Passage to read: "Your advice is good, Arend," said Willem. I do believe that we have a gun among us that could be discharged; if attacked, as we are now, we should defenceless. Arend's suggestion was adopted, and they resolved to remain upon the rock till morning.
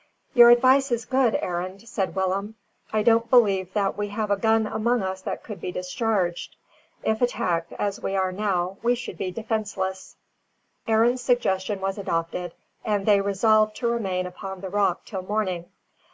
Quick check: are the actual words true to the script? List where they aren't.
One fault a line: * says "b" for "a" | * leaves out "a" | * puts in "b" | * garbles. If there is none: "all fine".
* says "don't" for "do"
* puts in "be"